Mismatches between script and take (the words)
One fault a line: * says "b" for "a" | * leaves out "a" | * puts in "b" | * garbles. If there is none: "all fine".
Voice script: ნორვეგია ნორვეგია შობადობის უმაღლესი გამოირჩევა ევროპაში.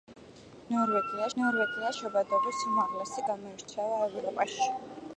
all fine